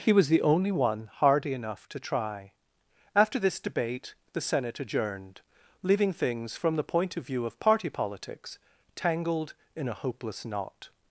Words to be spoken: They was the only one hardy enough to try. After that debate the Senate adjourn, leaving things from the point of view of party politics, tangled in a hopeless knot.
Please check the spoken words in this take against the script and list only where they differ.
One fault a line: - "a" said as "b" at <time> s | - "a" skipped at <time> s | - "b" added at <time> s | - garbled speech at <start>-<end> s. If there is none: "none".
- "They" said as "He" at 0.0 s
- "that" said as "this" at 3.4 s
- "adjourn" said as "adjourned" at 4.8 s